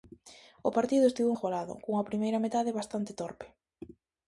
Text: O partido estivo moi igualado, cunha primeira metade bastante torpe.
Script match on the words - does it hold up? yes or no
no